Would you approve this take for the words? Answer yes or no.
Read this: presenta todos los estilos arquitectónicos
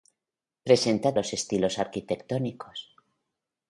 no